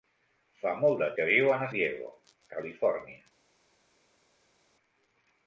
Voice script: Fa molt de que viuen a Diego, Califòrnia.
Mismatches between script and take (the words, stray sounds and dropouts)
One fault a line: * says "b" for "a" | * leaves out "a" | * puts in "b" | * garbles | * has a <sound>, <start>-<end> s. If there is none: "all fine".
all fine